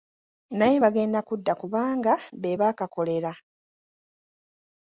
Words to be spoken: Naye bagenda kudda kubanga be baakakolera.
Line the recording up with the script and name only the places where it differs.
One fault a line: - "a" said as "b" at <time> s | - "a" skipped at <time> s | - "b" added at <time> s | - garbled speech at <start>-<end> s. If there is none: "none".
none